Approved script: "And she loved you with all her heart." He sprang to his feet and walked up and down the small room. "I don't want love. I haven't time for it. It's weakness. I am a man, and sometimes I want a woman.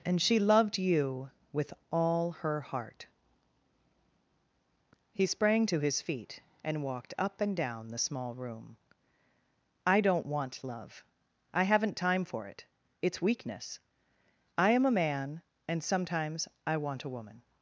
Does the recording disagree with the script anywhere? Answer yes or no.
no